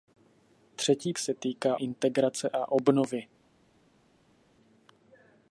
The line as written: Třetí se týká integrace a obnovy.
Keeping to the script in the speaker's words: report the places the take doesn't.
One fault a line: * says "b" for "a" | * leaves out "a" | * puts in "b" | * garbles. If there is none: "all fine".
all fine